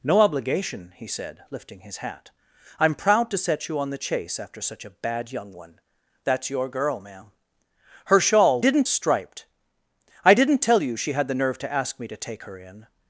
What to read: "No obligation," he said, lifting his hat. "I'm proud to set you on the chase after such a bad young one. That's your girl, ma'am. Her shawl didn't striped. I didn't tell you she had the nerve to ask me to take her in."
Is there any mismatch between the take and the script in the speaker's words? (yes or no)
no